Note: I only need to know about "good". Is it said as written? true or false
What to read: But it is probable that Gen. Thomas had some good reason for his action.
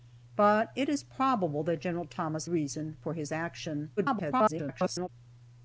false